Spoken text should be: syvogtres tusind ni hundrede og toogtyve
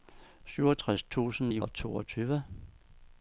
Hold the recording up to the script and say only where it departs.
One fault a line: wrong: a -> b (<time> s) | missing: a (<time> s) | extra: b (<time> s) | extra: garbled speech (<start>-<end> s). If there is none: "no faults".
missing: hundrede (1.6 s)